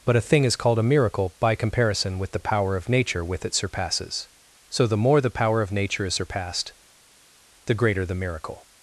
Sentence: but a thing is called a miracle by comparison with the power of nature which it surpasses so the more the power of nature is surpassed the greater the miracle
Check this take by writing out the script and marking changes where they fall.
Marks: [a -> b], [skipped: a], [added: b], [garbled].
but a thing is called a miracle by comparison with the power of nature [which -> with] it surpasses so the more the power of nature is surpassed the greater the miracle